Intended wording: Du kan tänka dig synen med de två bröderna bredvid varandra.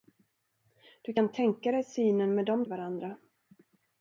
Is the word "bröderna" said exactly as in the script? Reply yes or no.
no